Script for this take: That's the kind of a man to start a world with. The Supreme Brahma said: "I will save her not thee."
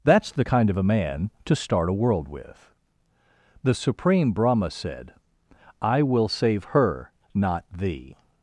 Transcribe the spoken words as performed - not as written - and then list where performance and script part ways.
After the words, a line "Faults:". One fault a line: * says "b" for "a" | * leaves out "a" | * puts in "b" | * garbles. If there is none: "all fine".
That's the kind of a man to start a world with. The Supreme Brahma said: "I will save her not thee."
Faults:
all fine